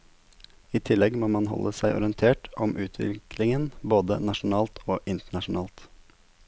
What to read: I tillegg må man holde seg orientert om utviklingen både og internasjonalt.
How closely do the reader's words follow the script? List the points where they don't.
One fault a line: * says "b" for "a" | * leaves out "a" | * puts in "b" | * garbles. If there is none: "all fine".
* puts in "nasjonalt"